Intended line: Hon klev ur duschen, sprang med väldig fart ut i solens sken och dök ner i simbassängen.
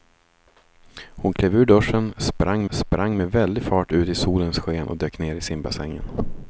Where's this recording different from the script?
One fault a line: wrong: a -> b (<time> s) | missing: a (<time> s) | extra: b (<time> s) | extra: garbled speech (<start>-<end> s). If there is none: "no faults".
extra: sprang (2.7 s)